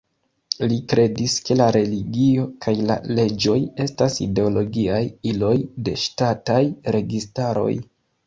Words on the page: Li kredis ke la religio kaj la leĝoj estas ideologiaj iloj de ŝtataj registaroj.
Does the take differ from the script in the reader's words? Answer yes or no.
no